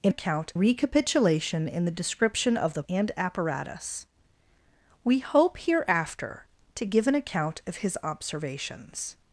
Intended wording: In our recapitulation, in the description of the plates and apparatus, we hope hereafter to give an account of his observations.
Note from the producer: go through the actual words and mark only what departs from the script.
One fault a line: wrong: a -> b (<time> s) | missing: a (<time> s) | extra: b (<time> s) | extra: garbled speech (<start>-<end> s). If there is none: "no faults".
wrong: our -> account (0.1 s)
missing: plates (2.8 s)